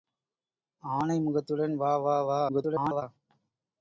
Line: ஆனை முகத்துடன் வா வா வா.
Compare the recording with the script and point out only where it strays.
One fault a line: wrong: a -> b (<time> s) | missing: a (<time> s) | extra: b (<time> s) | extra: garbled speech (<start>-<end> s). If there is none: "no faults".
extra: garbled speech (2.5-3.0 s)